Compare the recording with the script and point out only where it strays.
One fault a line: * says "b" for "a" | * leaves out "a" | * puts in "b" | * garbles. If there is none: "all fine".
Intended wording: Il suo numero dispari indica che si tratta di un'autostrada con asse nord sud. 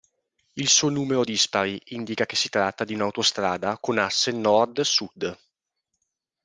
all fine